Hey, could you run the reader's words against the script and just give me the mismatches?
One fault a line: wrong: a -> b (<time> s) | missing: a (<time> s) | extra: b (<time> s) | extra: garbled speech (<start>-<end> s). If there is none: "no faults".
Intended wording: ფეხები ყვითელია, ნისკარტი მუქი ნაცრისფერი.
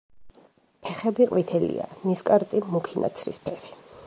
no faults